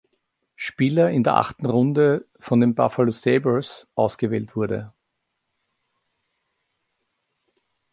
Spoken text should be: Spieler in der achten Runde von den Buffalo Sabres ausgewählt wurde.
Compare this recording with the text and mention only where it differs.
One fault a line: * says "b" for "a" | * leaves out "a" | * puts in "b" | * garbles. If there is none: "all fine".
all fine